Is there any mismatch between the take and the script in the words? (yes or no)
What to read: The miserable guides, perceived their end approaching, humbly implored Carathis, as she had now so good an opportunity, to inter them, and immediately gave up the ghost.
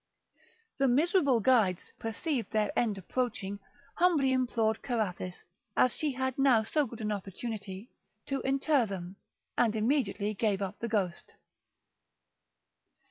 no